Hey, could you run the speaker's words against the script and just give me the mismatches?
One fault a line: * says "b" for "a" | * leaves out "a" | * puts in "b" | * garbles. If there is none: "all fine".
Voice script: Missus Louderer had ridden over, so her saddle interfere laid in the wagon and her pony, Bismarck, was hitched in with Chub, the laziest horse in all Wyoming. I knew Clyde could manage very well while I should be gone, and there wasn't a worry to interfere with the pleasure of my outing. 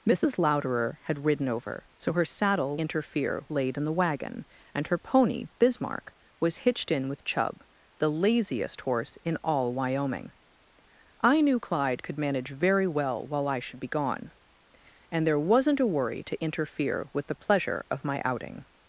all fine